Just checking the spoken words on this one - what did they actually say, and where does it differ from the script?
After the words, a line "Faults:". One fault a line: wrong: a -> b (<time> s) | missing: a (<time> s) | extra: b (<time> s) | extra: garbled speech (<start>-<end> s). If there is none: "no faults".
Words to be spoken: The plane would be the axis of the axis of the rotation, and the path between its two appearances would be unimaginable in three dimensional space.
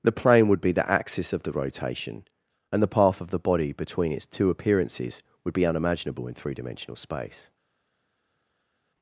The plane would be the axis of the rotation, and the path of the body between its two appearances would be unimaginable in three dimensional space.
Faults:
wrong: axis of -> rotation and (1.5 s)
wrong: rotation and -> path of (2.9 s)
wrong: path -> body (3.4 s)